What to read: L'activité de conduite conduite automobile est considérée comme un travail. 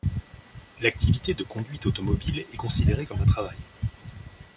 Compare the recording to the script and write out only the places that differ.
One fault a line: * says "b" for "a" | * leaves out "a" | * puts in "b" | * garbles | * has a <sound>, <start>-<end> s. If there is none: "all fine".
* leaves out "conduite"